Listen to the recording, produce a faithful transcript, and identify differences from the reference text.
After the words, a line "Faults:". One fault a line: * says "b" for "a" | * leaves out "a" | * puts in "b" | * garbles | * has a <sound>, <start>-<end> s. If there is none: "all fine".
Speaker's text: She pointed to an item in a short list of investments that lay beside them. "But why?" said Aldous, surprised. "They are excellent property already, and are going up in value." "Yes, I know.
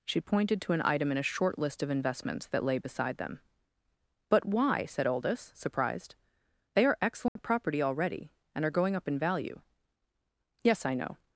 She pointed to an item in a short list of investments that lay beside them. "But why?" said Aldous, surprised. "They are excellent property already, and are going up in value." "Yes, I know.
Faults:
* has a dropout, 7.3-7.4 s